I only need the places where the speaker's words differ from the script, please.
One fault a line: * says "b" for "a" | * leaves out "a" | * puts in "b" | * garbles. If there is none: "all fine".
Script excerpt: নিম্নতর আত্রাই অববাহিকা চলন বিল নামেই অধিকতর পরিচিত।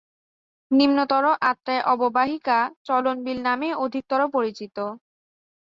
all fine